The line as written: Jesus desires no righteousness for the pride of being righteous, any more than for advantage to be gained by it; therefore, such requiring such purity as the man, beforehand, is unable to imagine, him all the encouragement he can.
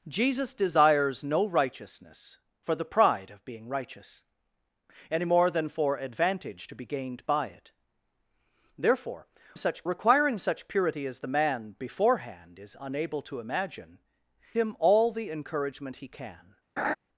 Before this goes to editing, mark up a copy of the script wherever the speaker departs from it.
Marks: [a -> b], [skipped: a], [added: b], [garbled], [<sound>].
Jesus desires no righteousness for the pride of being righteous, any more than for advantage to be gained by it; therefore, such requiring such purity as the man, beforehand, is unable to imagine, him all the encouragement he can. [laugh]